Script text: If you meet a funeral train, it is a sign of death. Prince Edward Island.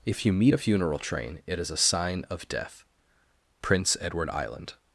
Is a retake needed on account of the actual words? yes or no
no